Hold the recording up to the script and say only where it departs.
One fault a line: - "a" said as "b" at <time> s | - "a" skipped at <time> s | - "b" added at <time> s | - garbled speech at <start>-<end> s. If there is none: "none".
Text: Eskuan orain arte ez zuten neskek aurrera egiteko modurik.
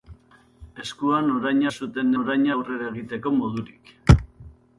- "arte" skipped at 1.6 s
- "neskek" said as "orain" at 2.2 s